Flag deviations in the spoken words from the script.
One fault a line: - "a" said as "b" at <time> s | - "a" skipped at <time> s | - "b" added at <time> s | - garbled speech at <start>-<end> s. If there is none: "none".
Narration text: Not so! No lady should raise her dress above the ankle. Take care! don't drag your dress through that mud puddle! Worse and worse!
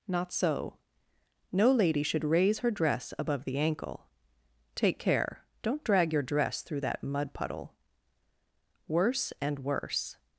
none